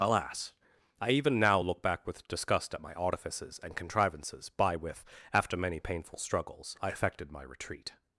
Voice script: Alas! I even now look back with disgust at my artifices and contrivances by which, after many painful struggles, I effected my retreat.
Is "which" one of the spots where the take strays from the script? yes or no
yes